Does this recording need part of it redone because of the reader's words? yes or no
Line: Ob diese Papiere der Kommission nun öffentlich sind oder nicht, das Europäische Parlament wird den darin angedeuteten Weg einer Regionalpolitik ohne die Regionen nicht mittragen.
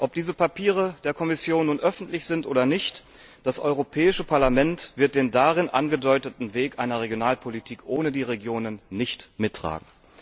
no